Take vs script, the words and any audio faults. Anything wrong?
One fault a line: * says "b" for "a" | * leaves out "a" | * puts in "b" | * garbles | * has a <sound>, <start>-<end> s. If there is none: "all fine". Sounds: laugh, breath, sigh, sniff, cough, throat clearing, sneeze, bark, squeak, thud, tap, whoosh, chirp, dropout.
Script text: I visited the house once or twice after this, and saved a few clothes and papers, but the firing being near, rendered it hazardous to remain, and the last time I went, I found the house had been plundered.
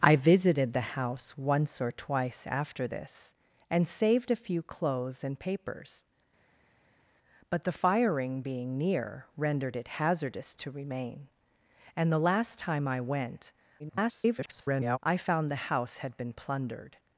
* garbles